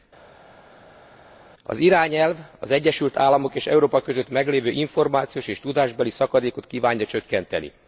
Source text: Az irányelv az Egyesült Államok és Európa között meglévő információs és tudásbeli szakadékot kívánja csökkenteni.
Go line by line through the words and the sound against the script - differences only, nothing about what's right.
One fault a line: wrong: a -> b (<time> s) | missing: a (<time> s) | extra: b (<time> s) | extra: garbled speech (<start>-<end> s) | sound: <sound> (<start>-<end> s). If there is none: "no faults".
no faults